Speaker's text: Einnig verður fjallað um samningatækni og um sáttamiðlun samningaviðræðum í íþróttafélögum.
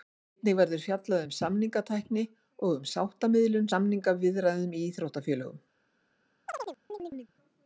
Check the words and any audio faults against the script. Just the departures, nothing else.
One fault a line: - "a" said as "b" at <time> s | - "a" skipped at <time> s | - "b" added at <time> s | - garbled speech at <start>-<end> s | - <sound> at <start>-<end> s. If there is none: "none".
- chirp at 6.5-7.3 s